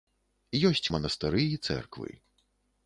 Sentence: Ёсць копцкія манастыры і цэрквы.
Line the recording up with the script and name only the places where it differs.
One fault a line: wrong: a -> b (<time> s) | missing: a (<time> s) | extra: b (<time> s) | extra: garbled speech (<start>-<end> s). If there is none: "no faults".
missing: копцкія (0.9 s)